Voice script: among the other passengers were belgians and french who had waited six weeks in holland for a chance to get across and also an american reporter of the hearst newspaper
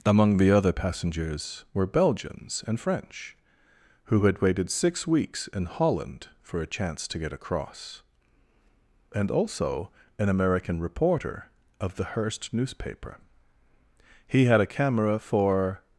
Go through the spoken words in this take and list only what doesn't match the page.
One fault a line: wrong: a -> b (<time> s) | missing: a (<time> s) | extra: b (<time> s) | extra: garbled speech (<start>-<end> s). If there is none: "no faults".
extra: he had a camera for (14.3 s)